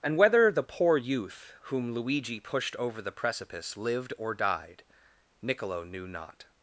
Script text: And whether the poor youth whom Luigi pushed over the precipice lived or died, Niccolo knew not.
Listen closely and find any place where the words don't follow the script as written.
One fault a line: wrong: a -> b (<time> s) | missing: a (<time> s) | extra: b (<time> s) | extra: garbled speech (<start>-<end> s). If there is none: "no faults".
no faults